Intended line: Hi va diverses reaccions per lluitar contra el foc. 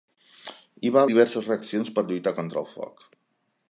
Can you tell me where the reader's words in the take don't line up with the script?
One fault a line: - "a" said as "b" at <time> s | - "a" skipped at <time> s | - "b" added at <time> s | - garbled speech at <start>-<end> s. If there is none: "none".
none